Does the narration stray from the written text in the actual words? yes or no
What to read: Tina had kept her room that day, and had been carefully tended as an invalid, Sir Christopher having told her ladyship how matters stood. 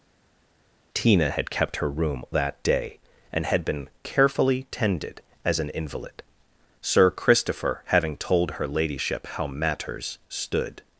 no